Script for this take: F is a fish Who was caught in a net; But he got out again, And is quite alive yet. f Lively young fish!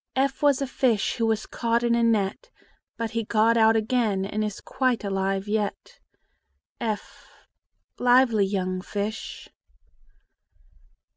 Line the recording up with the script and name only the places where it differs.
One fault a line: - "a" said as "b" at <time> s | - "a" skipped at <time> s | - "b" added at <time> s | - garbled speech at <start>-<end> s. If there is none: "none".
- "is" said as "was" at 0.4 s